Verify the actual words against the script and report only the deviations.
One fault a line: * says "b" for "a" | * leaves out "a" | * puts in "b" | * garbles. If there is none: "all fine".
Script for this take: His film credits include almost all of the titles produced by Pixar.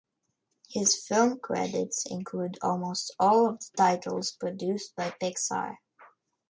all fine